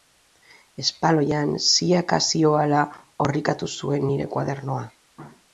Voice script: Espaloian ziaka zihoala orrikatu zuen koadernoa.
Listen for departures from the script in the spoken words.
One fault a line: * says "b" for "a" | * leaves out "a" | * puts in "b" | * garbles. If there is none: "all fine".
* puts in "nire"